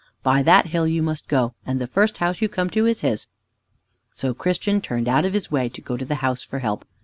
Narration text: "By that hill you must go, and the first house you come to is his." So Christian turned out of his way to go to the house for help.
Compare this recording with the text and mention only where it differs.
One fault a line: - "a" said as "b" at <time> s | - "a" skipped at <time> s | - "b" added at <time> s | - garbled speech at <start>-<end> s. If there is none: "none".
none